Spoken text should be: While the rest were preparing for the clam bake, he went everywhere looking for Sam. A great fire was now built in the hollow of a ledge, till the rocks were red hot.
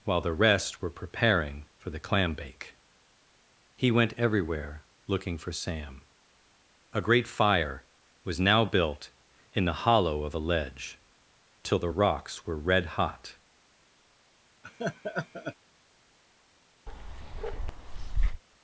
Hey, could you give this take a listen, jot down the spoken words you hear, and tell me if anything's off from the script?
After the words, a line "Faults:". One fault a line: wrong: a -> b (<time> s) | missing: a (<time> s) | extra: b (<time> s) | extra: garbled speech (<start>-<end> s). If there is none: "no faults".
While the rest were preparing for the clam bake, he went everywhere looking for Sam. A great fire was now built in the hollow of a ledge, till the rocks were red hot.
Faults:
no faults